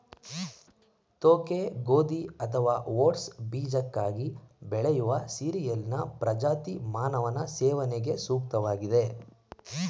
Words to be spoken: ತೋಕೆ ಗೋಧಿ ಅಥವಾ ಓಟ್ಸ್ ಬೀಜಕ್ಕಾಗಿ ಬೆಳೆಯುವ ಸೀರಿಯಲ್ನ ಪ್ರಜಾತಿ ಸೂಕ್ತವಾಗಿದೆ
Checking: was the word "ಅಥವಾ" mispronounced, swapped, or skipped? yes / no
no